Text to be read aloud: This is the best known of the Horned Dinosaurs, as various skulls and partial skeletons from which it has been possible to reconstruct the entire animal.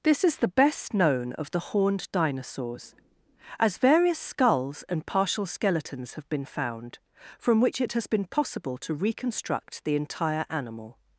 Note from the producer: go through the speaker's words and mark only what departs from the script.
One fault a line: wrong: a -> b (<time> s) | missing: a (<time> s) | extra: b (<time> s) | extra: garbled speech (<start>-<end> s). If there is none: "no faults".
extra: have been found (6.1 s)